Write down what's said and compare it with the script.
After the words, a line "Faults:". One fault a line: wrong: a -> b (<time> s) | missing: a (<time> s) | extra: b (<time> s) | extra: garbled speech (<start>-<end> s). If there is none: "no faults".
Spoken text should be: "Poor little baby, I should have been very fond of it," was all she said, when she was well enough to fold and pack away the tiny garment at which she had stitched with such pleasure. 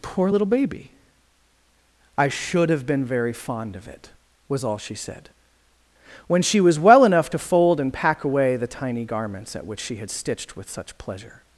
"Poor little baby, I should have been very fond of it," was all she said, when she was well enough to fold and pack away the tiny garments at which she had stitched with such pleasure.
Faults:
wrong: garment -> garments (9.0 s)